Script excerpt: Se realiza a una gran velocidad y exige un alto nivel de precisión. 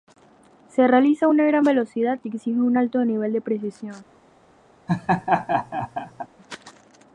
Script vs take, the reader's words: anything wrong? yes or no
no